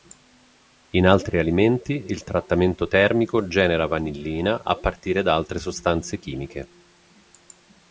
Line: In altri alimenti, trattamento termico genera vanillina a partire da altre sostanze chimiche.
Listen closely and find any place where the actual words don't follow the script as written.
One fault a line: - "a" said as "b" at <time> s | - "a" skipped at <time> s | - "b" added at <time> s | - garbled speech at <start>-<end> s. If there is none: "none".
- "il" added at 2.1 s